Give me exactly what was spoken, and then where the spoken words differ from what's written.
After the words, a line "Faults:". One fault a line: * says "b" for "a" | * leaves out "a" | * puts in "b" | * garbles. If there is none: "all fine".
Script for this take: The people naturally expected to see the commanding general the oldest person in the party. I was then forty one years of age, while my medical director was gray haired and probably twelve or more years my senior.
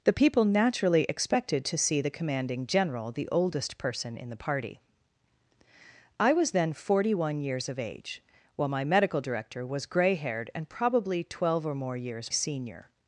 The people naturally expected to see the commanding general the oldest person in the party. I was then forty one years of age, while my medical director was gray haired and probably twelve or more years senior.
Faults:
* leaves out "my"